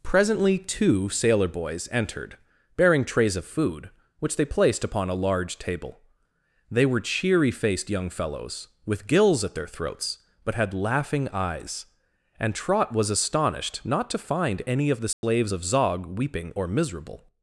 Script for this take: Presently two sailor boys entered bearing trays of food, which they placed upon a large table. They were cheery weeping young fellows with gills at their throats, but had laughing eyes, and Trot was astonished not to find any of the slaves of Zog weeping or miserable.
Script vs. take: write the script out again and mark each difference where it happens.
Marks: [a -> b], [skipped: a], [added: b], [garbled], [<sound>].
Presently two sailor boys entered bearing trays of food, which they placed upon a large table. They were cheery [weeping -> faced] young fellows with gills at their throats, but had laughing eyes, and Trot was astonished not to find any of the slaves [dropout] of Zog weeping or miserable.